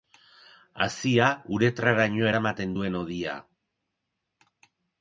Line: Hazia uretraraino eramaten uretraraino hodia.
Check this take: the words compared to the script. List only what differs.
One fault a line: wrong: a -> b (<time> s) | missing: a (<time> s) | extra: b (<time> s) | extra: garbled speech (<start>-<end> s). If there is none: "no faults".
wrong: uretraraino -> duen (2.8 s)